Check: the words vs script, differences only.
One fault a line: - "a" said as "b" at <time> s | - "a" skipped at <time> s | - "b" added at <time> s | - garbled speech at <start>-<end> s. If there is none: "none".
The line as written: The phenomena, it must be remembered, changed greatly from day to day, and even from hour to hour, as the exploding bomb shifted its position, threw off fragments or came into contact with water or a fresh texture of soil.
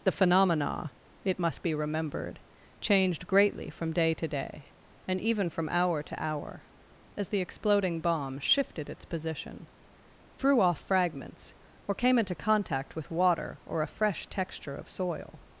none